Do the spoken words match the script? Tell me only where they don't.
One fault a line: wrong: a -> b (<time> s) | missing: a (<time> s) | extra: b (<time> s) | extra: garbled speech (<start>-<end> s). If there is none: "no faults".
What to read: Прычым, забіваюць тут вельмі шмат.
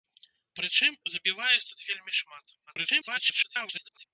extra: garbled speech (2.7-4.0 s)